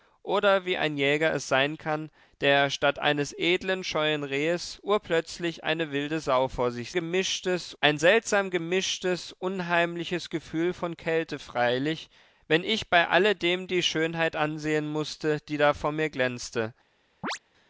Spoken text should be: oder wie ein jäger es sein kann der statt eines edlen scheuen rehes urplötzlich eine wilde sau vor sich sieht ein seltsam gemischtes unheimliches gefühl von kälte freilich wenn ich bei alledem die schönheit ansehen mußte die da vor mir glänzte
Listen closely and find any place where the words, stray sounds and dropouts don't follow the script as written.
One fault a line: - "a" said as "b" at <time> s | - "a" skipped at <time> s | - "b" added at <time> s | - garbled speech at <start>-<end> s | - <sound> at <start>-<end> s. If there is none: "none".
- "sieht" said as "gemischtes" at 6.9 s
- chirp at 17.2-17.4 s